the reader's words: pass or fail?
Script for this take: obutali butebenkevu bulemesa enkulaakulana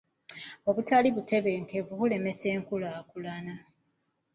pass